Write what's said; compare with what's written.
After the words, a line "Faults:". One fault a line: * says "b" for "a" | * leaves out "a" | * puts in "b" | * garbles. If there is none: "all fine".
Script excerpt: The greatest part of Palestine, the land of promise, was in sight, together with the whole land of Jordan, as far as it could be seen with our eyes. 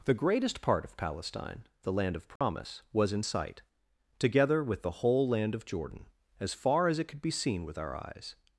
The greatest part of Palestine, the land of promise, was in sight, together with the whole land of Jordan, as far as it could be seen with our eyes.
Faults:
all fine